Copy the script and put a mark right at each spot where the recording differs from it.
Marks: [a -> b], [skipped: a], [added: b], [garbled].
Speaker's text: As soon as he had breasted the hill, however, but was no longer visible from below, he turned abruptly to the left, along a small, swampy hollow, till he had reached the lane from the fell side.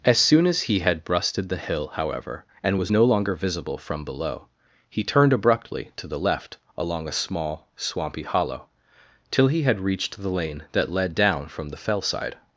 As soon as he had breasted the hill, however, [but -> and] was no longer visible from below, he turned abruptly to the left, along a small, swampy hollow, till he had reached the lane [added: that led down] from the fell side.